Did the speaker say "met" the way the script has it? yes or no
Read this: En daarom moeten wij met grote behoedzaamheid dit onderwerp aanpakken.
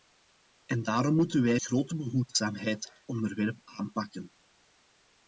no